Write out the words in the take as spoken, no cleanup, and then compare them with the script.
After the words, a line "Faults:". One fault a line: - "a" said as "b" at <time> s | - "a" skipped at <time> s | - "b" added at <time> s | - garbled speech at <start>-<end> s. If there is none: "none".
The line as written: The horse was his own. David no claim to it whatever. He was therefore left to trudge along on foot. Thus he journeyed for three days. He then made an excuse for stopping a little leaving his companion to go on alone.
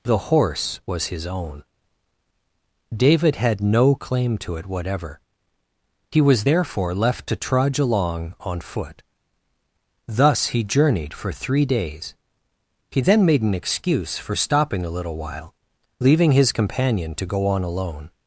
The horse was his own. David had no claim to it whatever. He was therefore left to trudge along on foot. Thus he journeyed for three days. He then made an excuse for stopping a little while, leaving his companion to go on alone.
Faults:
- "had" added at 3.4 s
- "while" added at 15.2 s